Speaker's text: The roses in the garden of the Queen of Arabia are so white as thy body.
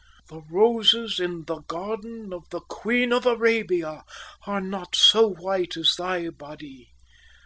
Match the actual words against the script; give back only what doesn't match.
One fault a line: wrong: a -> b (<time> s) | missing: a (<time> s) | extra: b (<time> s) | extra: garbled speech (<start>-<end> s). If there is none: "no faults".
extra: not (4.6 s)